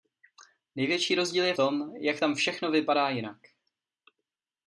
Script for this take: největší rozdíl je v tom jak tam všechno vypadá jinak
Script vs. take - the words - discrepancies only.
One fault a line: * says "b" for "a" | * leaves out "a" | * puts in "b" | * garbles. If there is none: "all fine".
* leaves out "v"